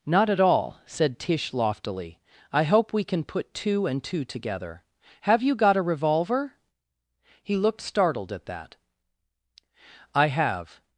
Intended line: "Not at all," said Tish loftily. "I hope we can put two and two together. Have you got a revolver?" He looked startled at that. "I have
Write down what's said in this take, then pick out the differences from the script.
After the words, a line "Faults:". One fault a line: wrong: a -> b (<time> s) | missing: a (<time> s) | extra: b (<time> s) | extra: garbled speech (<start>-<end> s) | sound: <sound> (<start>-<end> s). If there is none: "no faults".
"Not at all," said Tish loftily. "I hope we can put two and two together. Have you got a revolver?" He looked startled at that. "I have
Faults:
no faults